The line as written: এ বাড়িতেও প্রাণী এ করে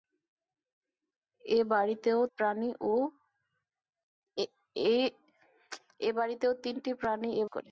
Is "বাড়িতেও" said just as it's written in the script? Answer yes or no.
yes